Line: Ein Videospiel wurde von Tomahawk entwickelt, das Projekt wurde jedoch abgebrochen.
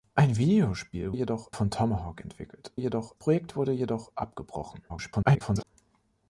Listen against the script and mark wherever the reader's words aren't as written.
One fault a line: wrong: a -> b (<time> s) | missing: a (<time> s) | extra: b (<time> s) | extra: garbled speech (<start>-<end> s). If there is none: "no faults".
wrong: wurde -> jedoch (1.1 s)
wrong: das -> jedoch (2.8 s)
extra: garbled speech (4.9-5.6 s)